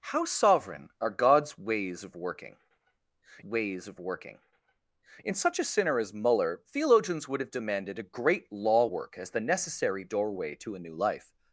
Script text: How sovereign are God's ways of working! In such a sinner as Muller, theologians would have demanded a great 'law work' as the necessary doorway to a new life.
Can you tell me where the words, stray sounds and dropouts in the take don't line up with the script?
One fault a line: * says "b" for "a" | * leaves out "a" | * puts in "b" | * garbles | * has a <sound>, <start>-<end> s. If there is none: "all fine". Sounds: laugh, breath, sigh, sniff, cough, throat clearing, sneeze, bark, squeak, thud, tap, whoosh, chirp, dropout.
* puts in "ways of working"